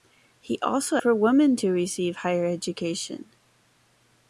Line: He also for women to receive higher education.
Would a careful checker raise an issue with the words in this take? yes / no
no